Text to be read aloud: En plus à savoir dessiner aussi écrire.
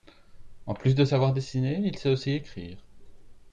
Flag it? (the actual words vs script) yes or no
yes